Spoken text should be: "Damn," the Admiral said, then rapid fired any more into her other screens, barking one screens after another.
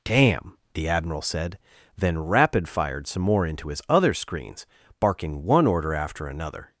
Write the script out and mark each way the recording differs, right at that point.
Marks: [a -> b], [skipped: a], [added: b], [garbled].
"Damn," the Admiral said, then rapid fired [any -> some] more into [her -> his] other screens, barking one [screens -> order] after another.